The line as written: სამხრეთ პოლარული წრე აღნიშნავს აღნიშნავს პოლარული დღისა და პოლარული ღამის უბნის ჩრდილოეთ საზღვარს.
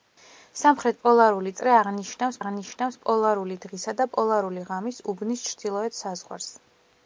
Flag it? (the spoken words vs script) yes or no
no